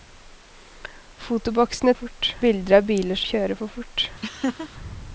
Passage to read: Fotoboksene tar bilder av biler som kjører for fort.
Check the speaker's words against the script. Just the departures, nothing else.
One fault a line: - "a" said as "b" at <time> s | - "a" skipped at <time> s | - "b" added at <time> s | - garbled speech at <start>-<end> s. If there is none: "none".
- "tar" said as "fort" at 1.9 s
- "som" skipped at 3.2 s